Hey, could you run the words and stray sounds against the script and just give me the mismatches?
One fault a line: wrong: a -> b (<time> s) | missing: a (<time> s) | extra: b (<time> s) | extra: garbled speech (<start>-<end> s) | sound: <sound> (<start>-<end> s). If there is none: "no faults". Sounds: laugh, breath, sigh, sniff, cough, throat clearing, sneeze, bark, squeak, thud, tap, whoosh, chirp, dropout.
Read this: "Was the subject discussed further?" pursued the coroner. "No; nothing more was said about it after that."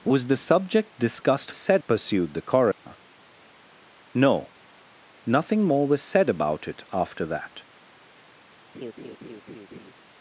wrong: further -> said (1.6 s)
sound: dropout (2.7-2.9 s)
sound: laugh (8.7-9.9 s)